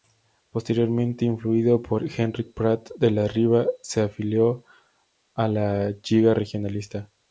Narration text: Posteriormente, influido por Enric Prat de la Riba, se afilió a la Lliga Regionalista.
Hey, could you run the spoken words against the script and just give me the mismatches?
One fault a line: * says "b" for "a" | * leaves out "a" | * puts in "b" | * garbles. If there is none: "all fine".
all fine